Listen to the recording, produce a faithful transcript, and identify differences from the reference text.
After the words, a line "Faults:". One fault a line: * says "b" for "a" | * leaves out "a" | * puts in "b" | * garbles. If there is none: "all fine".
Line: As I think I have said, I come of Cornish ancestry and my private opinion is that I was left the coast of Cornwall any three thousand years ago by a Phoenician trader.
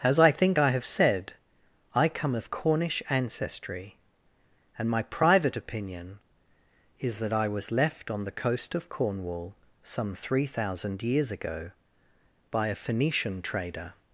As I think I have said, I come of Cornish ancestry and my private opinion is that I was left on the coast of Cornwall some three thousand years ago by a Phoenician trader.
Faults:
* puts in "on"
* says "some" for "any"